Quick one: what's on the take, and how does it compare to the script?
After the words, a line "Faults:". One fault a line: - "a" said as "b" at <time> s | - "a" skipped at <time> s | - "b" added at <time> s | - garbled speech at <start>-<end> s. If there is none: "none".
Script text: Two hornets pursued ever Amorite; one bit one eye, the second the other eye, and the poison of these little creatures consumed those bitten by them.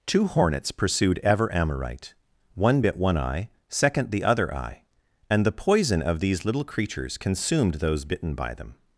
Two hornets pursued ever Amorite; one bit one eye, second the other eye, and the poison of these little creatures consumed those bitten by them.
Faults:
- "the" skipped at 3.5 s